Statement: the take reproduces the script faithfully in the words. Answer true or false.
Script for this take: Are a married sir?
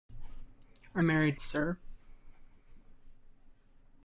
true